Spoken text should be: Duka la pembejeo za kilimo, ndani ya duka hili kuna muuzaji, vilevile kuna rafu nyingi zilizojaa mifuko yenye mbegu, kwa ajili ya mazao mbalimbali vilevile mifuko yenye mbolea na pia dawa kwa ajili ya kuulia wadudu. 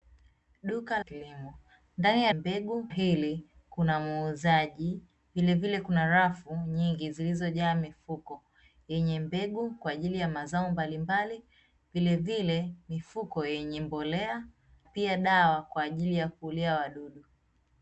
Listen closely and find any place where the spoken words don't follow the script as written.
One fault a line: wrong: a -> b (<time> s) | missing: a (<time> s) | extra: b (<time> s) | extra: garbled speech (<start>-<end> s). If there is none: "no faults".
missing: la pembejeo za (1.0 s)
wrong: duka -> mbegu (2.3 s)
missing: na (14.5 s)